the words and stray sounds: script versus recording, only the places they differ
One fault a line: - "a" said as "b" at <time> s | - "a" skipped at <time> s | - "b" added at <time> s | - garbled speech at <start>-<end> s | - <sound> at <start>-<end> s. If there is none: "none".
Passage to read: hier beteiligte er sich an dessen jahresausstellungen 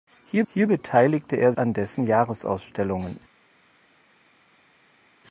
- "hier" added at 0.5 s
- "sich" skipped at 1.5 s